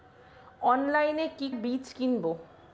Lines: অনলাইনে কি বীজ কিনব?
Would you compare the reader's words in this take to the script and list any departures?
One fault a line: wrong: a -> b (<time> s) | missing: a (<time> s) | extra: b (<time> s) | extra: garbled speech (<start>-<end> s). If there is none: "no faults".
no faults